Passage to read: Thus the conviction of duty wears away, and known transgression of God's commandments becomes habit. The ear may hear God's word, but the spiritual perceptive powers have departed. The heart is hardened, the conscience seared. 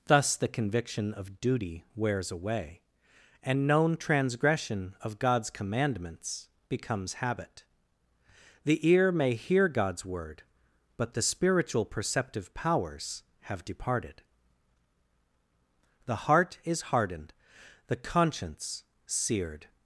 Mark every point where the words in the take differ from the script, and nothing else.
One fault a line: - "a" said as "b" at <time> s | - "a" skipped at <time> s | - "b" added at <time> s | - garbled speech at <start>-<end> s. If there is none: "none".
none